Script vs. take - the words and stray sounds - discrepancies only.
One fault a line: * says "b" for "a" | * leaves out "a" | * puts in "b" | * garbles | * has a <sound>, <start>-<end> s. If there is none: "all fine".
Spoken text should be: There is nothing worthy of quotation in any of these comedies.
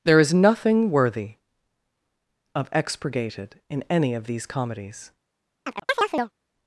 * says "expurgated" for "quotation"
* has a chirp, 5.6-6.3 s